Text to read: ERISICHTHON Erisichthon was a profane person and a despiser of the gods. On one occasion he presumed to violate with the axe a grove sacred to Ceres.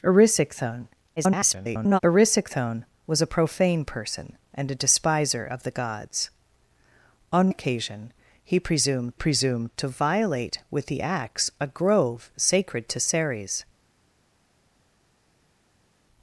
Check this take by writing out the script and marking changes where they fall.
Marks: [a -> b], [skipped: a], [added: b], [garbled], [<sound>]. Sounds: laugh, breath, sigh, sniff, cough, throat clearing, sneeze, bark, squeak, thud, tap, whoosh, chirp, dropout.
ERISICHTHON [garbled] Erisichthon was a profane person and a despiser of the gods. On [skipped: one] occasion he presumed [added: presumed] to violate with the axe a grove sacred to Ceres.